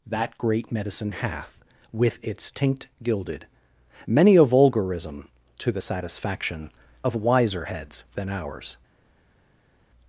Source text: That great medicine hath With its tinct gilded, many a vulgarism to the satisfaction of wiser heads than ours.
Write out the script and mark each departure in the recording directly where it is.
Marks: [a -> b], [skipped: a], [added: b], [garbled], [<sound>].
That great medicine hath With its tinct gilded, many a vulgarism to the satisfaction of wiser heads than ours.